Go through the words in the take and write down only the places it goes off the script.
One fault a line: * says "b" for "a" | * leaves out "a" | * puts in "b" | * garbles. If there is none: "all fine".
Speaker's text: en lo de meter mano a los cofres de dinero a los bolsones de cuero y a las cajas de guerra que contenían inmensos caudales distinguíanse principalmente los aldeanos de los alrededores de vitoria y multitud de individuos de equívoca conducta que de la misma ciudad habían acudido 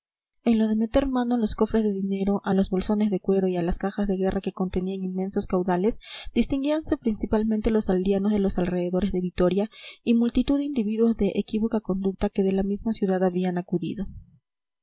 all fine